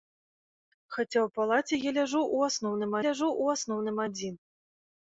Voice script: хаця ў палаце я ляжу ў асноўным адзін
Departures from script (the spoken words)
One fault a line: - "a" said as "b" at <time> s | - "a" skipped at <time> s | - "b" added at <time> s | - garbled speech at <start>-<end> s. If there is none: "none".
- "ляжу ў асноўным" added at 3.1 s